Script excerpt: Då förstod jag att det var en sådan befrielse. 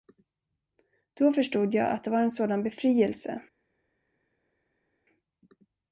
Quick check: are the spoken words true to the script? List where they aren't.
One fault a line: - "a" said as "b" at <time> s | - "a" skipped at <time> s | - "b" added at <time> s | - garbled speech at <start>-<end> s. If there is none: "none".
none